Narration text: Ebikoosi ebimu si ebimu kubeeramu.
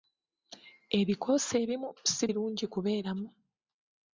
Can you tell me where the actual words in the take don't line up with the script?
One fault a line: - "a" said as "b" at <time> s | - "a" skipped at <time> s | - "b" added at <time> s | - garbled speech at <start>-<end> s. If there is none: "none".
- "ebimu" said as "birungi" at 2.3 s